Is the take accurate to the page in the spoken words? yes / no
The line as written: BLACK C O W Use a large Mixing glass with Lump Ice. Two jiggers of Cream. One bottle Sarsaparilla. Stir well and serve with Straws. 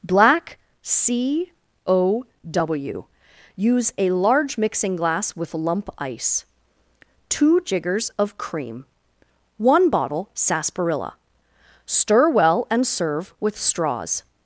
yes